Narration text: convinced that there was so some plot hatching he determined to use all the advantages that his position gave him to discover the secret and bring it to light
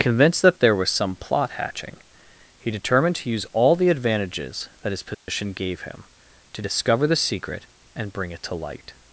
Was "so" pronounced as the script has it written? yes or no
no